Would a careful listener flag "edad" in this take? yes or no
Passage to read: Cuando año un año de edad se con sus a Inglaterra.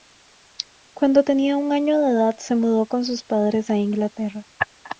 no